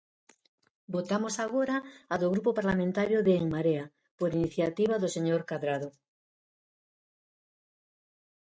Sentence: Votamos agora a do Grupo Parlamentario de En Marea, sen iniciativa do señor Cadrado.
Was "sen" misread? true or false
true